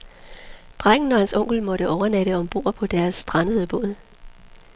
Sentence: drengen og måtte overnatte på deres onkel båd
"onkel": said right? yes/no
no